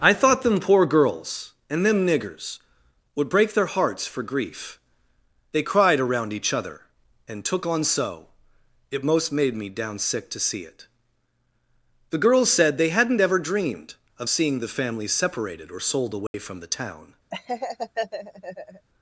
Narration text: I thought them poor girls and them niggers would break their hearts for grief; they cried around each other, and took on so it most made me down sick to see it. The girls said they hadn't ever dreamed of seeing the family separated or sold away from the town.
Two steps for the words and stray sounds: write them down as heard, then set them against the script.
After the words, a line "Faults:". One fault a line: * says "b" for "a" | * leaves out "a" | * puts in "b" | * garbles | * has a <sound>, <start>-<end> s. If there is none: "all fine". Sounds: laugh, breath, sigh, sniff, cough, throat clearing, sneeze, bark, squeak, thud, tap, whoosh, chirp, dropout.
I thought them poor girls and them niggers would break their hearts for grief; they cried around each other, and took on so it most made me down sick to see it. The girls said they hadn't ever dreamed of seeing the family separated or sold away from the town.
Faults:
* has a dropout, 16.3-16.3 s
* has a laugh, 17.3-18.9 s